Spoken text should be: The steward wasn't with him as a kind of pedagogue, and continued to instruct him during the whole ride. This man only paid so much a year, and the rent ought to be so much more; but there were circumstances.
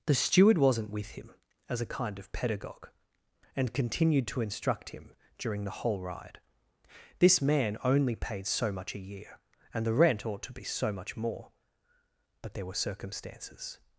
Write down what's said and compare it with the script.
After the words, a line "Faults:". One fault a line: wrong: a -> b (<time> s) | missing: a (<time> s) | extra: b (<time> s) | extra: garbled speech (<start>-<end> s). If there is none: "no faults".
The steward wasn't with him as a kind of pedagogue, and continued to instruct him during the whole ride. This man only paid so much a year, and the rent ought to be so much more; but there were circumstances.
Faults:
no faults